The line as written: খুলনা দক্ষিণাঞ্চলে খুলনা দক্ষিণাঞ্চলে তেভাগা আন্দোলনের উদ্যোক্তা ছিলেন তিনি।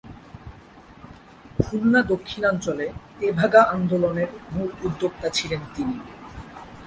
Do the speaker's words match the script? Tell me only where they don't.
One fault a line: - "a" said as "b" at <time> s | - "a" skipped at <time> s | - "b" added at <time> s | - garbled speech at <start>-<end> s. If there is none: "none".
- "খুলনা দক্ষিণাঞ্চলে" skipped at 2.9 s
- "মূল" added at 4.5 s